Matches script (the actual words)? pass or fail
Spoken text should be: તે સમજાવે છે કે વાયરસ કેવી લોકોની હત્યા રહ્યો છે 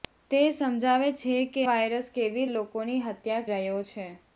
pass